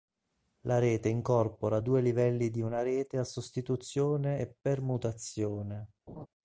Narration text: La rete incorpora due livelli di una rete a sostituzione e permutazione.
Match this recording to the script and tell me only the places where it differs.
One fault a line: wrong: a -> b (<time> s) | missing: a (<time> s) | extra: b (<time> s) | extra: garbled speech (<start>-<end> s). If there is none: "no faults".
no faults